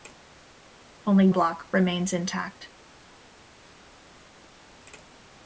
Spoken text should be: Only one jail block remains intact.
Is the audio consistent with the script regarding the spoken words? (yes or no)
no